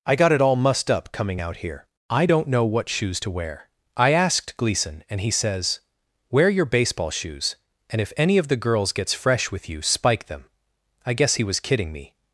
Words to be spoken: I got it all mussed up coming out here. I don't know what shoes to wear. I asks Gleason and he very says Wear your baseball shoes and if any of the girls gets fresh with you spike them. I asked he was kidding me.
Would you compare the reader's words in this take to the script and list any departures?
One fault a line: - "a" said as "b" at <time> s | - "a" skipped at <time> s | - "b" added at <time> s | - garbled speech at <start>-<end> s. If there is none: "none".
- "asks" said as "asked" at 4.1 s
- "very" skipped at 5.3 s
- "asked" said as "guess" at 11.1 s